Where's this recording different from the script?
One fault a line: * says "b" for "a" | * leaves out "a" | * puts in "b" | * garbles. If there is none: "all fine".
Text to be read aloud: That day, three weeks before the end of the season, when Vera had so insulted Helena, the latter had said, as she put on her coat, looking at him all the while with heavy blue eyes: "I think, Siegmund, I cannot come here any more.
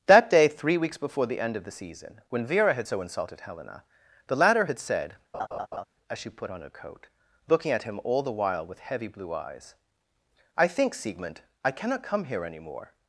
all fine